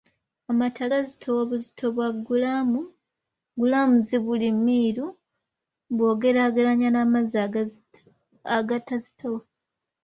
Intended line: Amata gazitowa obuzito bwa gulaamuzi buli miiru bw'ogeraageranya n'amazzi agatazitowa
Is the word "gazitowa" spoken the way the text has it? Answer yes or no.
yes